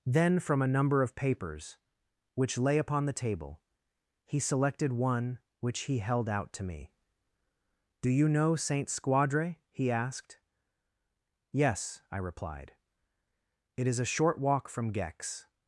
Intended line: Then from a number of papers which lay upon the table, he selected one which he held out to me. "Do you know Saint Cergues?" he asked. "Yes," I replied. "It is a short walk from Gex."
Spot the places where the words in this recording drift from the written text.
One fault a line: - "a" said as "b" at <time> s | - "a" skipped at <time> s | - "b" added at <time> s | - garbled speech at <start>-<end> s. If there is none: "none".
- "Cergues" said as "Squadre" at 8.9 s